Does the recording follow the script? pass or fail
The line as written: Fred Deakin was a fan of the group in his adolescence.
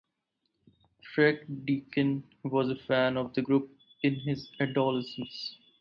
pass